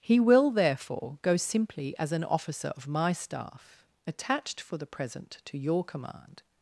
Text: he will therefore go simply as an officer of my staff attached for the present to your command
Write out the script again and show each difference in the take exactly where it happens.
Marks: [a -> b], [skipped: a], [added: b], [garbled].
he will therefore go simply as an officer of my staff attached for the present to your command